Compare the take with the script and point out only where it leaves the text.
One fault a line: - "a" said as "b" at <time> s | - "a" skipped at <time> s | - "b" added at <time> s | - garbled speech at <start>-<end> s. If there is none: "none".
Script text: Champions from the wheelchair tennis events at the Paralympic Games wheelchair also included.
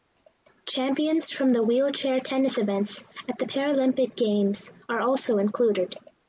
- "wheelchair" said as "are" at 4.9 s